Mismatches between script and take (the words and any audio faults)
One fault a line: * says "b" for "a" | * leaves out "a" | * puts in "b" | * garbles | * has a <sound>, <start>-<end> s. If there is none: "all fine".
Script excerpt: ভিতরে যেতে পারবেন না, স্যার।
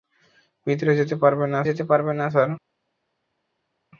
* puts in "যেতে পারবেন না"